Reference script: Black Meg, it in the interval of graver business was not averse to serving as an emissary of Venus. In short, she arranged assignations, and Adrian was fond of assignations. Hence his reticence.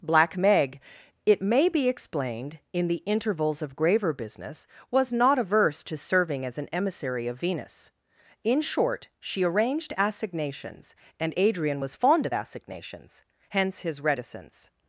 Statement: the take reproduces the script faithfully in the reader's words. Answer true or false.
false